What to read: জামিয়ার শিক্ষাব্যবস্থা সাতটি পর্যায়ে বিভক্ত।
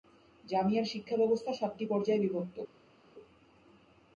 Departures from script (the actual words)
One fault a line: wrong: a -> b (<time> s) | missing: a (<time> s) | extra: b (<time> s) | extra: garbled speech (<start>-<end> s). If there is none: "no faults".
no faults